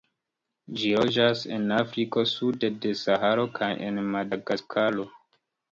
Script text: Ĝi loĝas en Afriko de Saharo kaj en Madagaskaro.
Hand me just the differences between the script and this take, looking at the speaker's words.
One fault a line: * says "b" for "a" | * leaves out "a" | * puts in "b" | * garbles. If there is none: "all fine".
* puts in "sude"